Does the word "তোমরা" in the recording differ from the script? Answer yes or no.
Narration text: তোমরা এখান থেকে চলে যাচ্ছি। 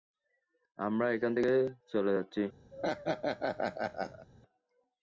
yes